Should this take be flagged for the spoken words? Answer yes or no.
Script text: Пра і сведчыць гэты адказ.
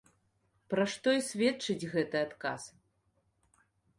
yes